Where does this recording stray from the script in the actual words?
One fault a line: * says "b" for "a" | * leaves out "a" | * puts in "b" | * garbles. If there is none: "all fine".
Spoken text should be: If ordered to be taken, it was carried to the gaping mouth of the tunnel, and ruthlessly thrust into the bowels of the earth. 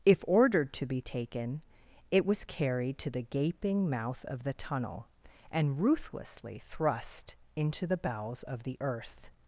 all fine